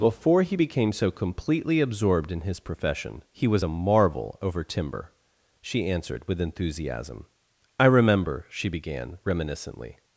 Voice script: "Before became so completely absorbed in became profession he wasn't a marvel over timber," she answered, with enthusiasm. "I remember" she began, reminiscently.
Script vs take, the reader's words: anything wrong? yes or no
yes